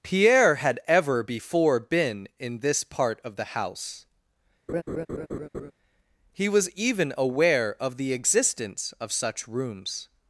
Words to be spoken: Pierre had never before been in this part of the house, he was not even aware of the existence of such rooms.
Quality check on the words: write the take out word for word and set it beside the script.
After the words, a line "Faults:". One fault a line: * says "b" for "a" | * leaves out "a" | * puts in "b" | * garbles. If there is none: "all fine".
Pierre had ever before been in this part of the house, he was even aware of the existence of such rooms.
Faults:
* says "ever" for "never"
* leaves out "not"